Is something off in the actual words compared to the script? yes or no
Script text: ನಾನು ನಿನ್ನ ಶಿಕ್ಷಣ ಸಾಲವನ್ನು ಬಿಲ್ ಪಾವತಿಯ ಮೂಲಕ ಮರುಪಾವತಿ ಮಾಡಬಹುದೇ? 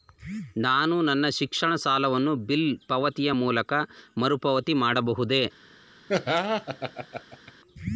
yes